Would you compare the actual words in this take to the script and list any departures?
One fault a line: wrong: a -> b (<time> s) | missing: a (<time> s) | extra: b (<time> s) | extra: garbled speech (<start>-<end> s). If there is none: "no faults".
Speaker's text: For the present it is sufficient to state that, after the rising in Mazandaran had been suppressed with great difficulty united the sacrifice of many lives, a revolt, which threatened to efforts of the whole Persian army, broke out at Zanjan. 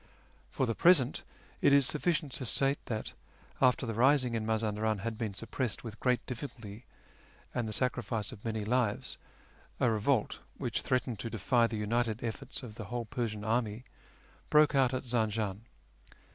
wrong: united -> and (7.5 s)
extra: defy the united (11.3 s)